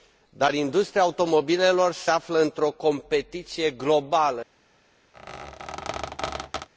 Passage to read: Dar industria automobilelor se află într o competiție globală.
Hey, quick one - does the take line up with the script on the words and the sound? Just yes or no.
no